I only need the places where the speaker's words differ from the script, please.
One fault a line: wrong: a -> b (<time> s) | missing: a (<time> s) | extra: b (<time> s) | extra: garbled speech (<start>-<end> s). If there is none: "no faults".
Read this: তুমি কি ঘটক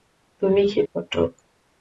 no faults